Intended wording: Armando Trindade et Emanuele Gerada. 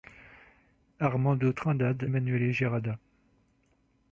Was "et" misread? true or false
true